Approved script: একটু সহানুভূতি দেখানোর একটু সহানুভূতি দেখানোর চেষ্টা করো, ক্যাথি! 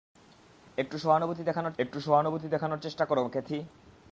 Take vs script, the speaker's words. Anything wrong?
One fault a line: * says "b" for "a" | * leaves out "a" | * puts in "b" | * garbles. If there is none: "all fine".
all fine